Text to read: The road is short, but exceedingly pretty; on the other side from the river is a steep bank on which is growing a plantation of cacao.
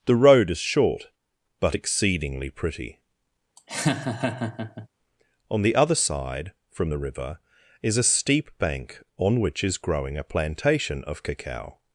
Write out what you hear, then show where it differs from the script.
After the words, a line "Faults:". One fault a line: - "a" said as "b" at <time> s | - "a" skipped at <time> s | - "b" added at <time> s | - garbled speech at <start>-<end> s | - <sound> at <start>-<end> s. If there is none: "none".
The road is short, but exceedingly pretty; on the other side from the river is a steep bank on which is growing a plantation of cacao.
Faults:
- laugh at 3.6-4.9 s